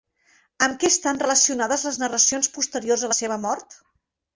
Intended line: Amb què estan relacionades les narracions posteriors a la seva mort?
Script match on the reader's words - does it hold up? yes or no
yes